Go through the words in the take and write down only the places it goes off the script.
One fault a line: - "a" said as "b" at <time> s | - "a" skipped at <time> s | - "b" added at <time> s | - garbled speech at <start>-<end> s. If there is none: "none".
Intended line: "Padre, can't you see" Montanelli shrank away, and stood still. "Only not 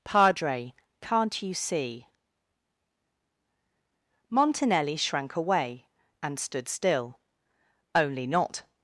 none